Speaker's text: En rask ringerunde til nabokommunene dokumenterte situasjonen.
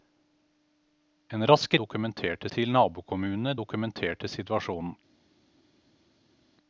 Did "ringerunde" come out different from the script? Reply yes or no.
yes